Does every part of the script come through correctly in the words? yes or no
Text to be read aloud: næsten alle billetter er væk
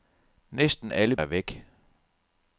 no